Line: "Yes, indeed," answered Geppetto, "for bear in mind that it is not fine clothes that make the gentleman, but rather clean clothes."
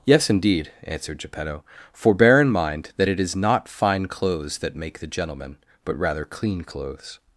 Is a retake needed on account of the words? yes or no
no